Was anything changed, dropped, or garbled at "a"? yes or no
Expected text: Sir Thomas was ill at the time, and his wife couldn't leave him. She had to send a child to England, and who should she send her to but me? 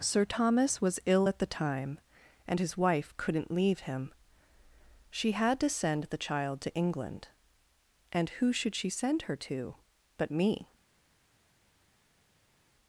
yes